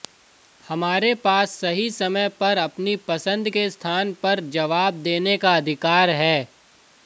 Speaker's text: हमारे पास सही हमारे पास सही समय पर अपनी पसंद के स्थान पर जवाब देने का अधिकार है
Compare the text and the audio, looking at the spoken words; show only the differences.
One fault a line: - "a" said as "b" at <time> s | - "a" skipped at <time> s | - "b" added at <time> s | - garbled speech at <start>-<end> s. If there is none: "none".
- "हमारे पास सही" skipped at 1.9 s